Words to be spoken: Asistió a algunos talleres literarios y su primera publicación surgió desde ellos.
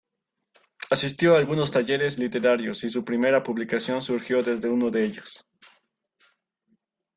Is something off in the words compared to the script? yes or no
yes